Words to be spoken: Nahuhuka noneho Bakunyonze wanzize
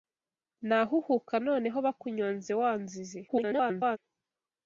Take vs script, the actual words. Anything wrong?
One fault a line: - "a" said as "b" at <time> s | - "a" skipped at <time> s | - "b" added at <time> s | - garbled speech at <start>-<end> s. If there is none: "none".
- garbled speech at 3.3-4.0 s